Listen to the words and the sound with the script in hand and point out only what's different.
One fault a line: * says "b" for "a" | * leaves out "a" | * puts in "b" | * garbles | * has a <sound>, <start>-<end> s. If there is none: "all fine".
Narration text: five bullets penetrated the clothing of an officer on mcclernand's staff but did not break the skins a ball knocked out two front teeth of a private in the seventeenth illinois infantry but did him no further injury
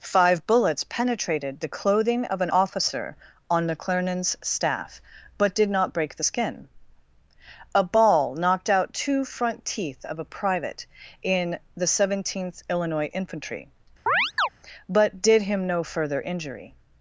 * says "skin" for "skins"
* has a chirp, 14.1-14.5 s